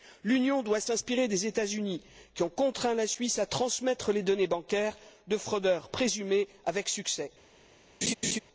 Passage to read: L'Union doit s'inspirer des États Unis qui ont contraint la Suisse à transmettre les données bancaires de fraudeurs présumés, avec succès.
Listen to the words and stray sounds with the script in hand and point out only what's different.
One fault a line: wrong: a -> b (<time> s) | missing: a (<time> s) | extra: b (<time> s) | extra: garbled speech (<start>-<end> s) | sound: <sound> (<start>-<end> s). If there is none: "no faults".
sound: laugh (8.0-8.4 s)